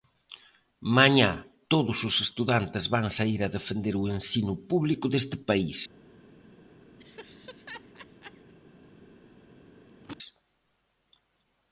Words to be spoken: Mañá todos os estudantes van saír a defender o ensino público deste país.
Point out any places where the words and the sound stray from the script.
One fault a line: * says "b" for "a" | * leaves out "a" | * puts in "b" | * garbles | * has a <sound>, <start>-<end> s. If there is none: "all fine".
* has a laugh, 7.0-8.5 s
* has a throat clearing, 9.9-10.2 s